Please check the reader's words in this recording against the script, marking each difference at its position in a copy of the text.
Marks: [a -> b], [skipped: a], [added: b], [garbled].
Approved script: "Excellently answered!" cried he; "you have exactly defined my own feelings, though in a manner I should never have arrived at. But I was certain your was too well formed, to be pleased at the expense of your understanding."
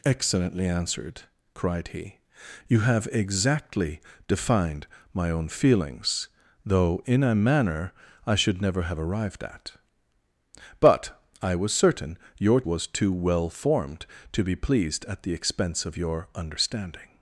"Excellently answered!" cried he; "you have exactly defined my own feelings, though in a manner I should never have arrived at. But I was certain your was too well formed, to be pleased at the expense of your understanding."